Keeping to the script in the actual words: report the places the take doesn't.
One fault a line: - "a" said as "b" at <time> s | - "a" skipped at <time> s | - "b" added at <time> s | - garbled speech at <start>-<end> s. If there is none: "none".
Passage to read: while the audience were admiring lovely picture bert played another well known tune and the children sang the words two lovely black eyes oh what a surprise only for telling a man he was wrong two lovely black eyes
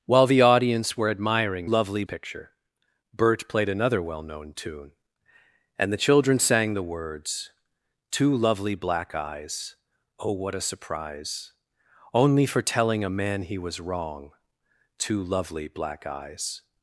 none